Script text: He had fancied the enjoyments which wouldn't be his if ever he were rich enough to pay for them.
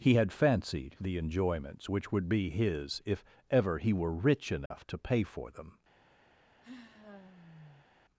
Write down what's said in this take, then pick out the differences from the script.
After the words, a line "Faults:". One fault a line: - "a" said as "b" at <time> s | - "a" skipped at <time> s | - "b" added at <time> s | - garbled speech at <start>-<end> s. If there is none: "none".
He had fancied the enjoyments which would be his if ever he were rich enough to pay for them.
Faults:
- "wouldn't" said as "would" at 2.1 s